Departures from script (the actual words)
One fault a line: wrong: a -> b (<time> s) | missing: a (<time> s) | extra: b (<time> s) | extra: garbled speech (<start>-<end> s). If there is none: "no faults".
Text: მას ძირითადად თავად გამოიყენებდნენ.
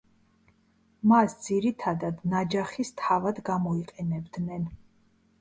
extra: ნაჯახის (2.3 s)